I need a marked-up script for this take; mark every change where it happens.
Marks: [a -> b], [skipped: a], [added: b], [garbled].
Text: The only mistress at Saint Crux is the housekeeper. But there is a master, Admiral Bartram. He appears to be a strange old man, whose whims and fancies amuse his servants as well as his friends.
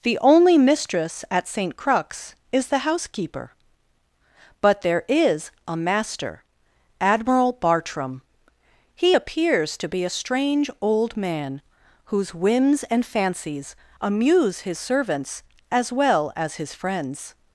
The only mistress at Saint Crux is the housekeeper. But there is a master, Admiral Bartram. He appears to be a strange old man, whose whims and fancies amuse his servants as well as his friends.